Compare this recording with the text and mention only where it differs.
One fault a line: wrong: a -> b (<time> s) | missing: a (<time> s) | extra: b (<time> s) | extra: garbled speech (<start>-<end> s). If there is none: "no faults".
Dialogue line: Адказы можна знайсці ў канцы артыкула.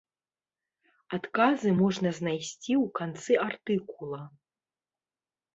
no faults